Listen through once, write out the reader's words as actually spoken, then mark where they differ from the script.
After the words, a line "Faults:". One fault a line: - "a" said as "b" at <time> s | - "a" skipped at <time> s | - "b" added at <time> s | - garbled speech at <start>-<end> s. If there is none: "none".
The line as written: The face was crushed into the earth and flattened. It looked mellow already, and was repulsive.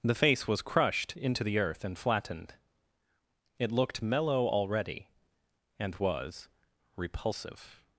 The face was crushed into the earth and flattened. It looked mellow already, and was repulsive.
Faults:
none